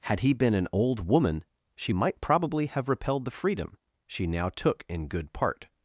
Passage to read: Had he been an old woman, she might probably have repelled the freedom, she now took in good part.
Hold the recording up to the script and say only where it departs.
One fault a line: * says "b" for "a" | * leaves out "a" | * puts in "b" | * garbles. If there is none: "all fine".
all fine